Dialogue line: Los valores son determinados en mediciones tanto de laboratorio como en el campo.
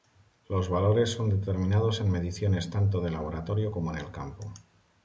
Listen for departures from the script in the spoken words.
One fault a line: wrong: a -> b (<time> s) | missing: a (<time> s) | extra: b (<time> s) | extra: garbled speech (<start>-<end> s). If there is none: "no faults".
no faults